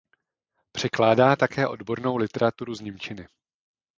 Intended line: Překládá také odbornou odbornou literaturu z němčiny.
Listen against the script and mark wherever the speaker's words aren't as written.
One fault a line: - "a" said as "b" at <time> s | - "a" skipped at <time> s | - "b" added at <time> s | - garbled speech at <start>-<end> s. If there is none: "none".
- "odbornou" skipped at 2.2 s